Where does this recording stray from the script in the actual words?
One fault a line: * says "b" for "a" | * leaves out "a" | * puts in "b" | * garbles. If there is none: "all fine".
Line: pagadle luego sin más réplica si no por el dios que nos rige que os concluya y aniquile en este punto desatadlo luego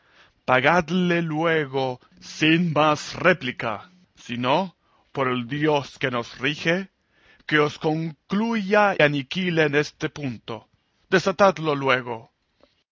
* leaves out "y"